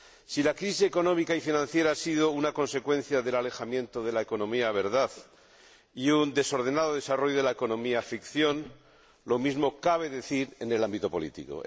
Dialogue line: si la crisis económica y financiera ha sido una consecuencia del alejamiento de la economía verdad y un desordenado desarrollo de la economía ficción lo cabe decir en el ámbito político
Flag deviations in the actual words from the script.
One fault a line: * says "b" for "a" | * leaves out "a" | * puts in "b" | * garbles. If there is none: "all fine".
* puts in "mismo"